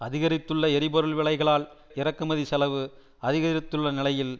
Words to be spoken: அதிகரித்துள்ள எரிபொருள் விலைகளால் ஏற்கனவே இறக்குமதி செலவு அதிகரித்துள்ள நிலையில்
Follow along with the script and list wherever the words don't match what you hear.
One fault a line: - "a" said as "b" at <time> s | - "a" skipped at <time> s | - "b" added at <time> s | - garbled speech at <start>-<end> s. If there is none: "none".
- "ஏற்கனவே" skipped at 1.6 s